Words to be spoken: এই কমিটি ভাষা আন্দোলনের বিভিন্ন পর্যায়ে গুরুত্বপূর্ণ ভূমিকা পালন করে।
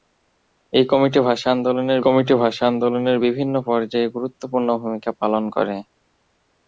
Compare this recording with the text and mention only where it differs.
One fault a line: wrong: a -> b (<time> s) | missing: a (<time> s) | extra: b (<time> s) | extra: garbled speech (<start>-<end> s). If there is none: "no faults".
extra: কমিটি ভাষা আন্দোলনের (2.0 s)